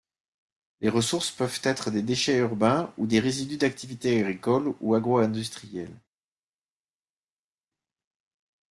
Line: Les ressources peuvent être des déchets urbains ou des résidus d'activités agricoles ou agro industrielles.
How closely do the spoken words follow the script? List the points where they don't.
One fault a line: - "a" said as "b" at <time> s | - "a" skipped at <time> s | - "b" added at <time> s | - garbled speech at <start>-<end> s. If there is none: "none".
none